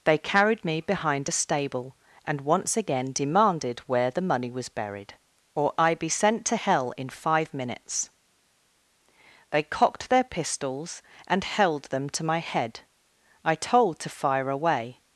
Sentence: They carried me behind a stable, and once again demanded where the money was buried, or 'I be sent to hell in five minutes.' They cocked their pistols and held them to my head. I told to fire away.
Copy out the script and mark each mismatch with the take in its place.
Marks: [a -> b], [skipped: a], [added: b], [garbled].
They carried me behind a stable, and once again demanded where the money was buried, or 'I be sent to hell in five minutes.' They cocked their pistols and held them to my head. I told to fire away.